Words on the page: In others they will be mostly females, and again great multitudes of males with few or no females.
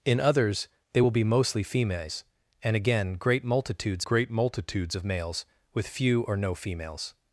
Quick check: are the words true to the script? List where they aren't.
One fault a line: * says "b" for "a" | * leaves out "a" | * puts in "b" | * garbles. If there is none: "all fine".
* puts in "great multitudes"